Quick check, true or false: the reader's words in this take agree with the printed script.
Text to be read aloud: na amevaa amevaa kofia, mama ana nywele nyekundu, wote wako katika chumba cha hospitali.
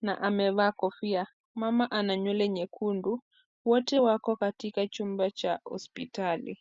false